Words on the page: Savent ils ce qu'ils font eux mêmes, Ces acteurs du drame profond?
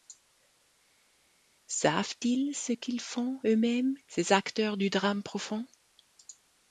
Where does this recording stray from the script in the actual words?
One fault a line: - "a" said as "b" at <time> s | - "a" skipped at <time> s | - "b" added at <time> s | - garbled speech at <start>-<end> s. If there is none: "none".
none